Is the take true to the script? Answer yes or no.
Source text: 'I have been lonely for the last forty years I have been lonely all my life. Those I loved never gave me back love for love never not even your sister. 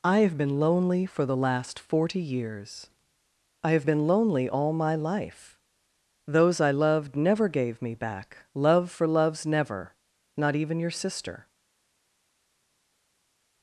no